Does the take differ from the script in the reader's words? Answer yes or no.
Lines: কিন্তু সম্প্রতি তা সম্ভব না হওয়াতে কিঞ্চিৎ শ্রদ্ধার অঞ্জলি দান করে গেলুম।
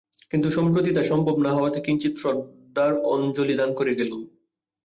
no